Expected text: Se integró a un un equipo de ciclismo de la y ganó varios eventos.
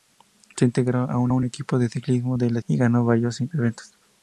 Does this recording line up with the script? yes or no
yes